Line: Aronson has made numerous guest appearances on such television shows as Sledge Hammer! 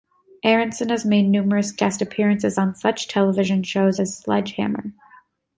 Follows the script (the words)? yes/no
yes